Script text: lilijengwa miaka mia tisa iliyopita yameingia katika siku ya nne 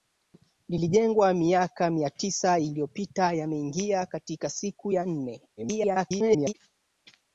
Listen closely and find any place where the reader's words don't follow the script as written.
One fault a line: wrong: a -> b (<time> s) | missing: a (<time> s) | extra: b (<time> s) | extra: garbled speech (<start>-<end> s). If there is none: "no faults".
extra: garbled speech (5.6-6.5 s)